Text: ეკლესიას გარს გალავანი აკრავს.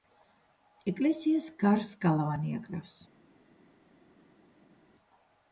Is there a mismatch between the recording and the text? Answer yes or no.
no